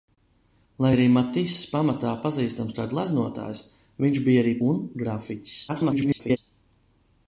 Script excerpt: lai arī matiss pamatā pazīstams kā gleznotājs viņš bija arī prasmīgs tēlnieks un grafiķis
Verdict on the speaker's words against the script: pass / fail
fail